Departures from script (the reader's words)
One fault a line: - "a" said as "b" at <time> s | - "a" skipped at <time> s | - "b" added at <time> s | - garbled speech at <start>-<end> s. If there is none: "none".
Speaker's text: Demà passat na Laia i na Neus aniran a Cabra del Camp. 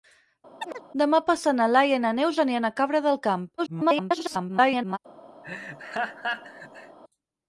- garbled speech at 3.6-5.0 s